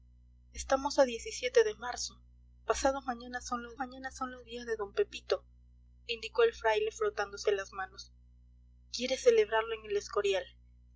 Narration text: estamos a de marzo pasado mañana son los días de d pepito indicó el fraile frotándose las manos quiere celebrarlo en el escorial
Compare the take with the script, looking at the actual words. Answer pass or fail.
fail